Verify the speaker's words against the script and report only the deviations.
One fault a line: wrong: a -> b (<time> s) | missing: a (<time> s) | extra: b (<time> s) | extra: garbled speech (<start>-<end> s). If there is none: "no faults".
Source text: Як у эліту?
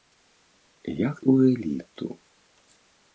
no faults